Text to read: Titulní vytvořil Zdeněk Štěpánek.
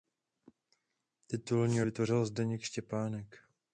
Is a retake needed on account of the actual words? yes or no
no